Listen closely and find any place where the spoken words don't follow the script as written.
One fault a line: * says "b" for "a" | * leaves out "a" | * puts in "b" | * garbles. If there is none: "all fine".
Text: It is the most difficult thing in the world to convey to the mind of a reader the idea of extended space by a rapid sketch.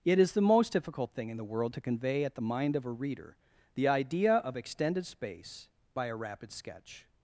* says "at" for "to"